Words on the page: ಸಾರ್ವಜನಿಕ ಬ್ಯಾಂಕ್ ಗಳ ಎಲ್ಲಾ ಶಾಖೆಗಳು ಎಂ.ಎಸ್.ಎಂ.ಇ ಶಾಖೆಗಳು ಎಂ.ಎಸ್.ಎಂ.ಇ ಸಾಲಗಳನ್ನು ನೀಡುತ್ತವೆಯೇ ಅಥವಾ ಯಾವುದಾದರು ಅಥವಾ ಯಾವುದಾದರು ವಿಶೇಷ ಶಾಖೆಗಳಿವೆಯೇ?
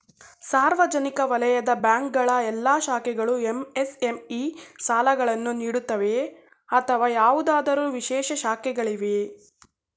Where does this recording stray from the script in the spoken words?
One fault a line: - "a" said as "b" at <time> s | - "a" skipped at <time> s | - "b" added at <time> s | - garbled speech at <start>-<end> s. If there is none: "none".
- "ವಲಯದ" added at 1.2 s
- "ಶಾಖೆಗಳು ಎಂ.ಎಸ್.ಎಂ.ಇ" skipped at 4.4 s
- "ಅಥವಾ ಯಾವುದಾದರು" skipped at 7.8 s